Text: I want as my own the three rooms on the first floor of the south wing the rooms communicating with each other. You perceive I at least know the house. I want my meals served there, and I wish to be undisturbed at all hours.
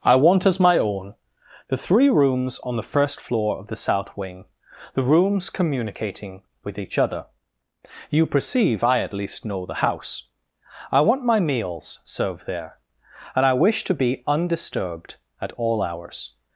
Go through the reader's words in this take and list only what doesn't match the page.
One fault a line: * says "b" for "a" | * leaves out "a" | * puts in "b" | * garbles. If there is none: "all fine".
all fine